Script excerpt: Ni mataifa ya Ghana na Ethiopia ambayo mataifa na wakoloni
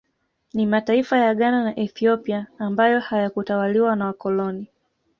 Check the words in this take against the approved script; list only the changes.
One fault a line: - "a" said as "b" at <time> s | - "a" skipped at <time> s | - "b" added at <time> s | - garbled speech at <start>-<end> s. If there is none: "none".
- "mataifa" said as "hayakutawaliwa" at 3.0 s